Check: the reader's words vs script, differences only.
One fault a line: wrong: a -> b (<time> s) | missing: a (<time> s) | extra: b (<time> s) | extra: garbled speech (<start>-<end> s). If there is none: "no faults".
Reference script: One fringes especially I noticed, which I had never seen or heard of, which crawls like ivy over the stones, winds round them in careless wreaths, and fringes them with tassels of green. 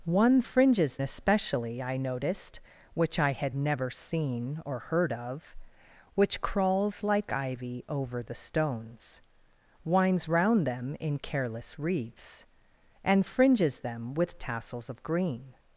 no faults